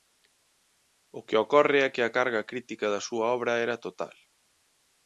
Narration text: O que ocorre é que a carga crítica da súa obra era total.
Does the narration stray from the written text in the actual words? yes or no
no